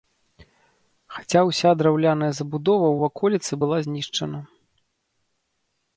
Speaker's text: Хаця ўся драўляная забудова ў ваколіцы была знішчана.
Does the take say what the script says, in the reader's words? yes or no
yes